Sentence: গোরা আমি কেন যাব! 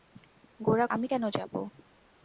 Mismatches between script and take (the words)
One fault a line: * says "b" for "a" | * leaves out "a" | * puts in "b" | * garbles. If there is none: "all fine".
all fine